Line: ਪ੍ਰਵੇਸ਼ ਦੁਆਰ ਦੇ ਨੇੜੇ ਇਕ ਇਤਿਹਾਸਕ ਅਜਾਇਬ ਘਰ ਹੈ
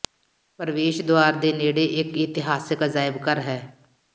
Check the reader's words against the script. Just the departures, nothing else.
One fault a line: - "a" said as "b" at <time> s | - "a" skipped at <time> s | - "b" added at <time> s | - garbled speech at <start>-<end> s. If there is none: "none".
none